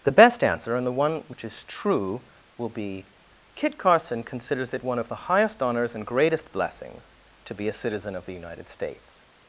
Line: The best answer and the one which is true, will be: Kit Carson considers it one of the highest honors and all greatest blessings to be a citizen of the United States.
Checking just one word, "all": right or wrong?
wrong